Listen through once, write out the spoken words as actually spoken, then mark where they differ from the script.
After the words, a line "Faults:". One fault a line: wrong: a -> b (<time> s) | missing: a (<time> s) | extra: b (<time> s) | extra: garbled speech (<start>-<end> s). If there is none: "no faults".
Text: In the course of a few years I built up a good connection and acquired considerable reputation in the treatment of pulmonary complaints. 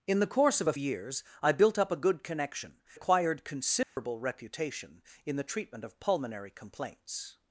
In the course of a years I built up a good connection acquired considerable reputation in the treatment of pulmonary complaints.
Faults:
missing: few (0.7 s)
missing: and (2.8 s)